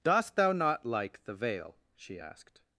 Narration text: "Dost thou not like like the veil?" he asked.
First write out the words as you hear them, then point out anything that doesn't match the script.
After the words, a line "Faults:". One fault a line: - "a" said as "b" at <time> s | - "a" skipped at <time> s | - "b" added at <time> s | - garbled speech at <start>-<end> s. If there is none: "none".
"Dost thou not like the veil?" she asked.
Faults:
- "like" skipped at 1.2 s
- "he" said as "she" at 1.9 s